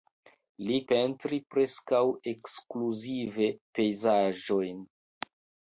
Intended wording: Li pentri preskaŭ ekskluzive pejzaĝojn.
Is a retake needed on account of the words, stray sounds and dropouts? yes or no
no